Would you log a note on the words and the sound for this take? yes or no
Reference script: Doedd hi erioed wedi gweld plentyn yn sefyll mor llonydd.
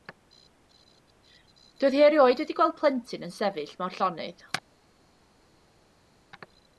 no